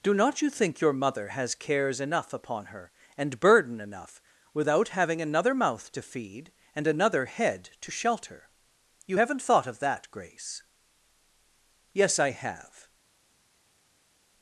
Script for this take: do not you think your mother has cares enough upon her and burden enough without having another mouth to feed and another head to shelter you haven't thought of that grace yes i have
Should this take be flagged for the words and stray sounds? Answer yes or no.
no